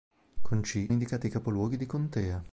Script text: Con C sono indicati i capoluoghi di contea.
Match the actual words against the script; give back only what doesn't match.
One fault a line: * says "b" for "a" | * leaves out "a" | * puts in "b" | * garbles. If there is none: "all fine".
* leaves out "sono"